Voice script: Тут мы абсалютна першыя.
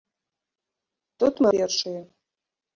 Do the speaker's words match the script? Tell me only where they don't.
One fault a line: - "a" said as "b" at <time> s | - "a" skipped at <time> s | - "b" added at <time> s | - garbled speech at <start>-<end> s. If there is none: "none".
- "абсалютна" skipped at 1.5 s